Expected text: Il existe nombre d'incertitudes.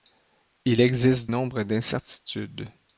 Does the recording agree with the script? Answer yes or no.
yes